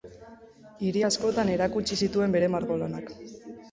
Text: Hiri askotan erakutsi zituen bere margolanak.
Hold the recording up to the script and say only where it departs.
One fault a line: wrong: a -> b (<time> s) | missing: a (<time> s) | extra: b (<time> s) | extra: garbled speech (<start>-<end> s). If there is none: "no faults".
no faults